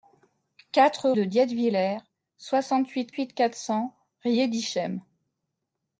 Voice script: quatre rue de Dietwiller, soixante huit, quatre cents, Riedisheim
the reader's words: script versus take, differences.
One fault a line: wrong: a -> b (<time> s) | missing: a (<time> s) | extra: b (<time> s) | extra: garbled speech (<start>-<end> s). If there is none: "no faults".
missing: rue (1.1 s)
extra: huit (3.1 s)